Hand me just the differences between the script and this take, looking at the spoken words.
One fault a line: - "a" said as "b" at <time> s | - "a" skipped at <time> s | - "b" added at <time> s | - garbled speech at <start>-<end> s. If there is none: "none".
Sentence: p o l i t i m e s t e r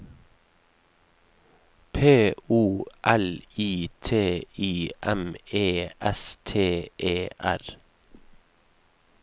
none